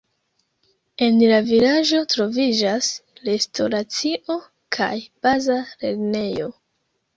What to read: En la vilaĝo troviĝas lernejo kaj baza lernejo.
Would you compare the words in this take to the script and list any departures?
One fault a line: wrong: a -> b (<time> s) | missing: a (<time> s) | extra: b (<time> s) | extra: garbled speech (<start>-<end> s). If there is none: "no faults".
wrong: lernejo -> restoracio (3.3 s)